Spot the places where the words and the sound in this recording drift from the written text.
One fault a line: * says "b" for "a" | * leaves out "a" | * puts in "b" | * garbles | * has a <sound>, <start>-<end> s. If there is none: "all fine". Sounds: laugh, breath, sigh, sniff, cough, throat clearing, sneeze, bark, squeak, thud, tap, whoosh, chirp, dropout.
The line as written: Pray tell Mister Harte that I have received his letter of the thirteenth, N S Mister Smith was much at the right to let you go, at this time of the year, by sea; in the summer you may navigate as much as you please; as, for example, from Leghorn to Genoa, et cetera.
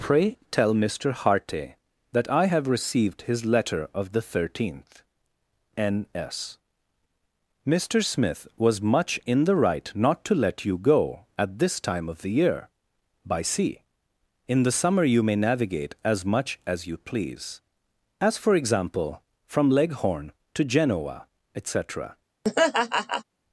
* says "in" for "at"
* puts in "not"
* has a laugh, 22.4-23.2 s